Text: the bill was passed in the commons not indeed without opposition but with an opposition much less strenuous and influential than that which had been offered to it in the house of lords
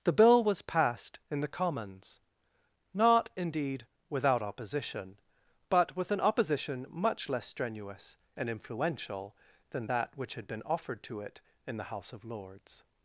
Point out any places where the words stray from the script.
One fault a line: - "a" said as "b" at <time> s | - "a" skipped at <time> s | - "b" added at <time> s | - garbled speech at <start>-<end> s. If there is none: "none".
none